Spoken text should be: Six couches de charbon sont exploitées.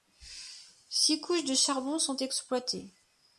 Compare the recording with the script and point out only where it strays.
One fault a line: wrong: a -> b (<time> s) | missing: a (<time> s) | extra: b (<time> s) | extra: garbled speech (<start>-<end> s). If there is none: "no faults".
no faults